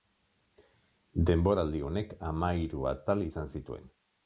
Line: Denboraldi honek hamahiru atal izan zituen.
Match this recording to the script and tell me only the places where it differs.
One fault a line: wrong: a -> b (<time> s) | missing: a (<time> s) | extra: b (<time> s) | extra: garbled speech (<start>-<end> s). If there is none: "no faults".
no faults